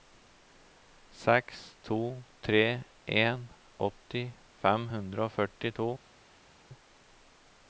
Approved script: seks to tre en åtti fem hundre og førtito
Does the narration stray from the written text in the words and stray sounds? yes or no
no